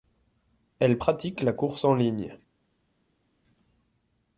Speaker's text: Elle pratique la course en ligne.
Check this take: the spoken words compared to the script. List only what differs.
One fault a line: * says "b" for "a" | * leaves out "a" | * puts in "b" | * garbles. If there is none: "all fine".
all fine